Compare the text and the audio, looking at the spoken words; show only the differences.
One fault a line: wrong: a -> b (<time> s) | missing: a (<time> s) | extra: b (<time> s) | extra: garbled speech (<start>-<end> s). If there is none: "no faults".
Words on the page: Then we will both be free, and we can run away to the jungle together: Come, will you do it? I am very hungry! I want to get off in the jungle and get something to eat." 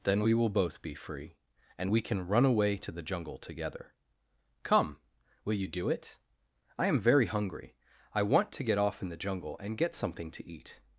no faults